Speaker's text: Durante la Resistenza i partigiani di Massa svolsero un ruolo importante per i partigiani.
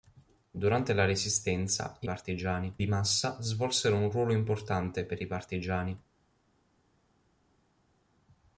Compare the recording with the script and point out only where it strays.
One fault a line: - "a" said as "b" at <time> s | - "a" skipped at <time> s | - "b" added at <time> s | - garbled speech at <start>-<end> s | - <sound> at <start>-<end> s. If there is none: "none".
none